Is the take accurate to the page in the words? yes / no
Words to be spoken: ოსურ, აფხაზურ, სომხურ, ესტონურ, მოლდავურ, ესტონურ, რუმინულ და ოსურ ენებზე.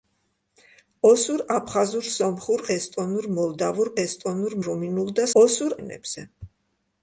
yes